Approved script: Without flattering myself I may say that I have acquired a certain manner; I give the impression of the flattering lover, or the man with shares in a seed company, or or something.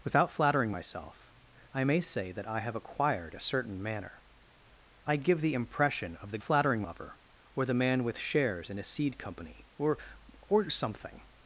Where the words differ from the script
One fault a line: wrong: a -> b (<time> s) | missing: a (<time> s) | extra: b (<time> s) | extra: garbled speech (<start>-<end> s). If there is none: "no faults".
no faults